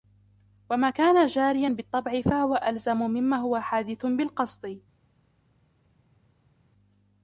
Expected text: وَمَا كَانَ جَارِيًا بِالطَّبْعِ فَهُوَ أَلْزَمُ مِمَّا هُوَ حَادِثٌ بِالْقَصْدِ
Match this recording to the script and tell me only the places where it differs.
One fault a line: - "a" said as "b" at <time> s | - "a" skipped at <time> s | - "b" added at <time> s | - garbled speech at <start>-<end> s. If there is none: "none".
none